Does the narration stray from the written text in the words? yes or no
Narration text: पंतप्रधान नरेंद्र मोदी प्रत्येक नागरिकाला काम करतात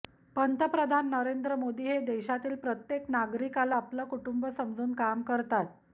yes